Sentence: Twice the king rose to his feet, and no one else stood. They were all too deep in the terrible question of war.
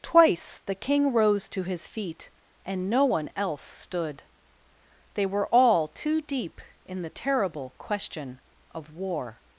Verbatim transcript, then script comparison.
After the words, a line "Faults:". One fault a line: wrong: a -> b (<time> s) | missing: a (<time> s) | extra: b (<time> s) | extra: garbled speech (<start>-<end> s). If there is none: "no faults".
Twice the king rose to his feet, and no one else stood. They were all too deep in the terrible question of war.
Faults:
no faults